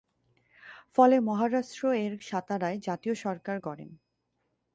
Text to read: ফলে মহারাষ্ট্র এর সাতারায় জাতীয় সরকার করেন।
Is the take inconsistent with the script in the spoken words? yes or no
no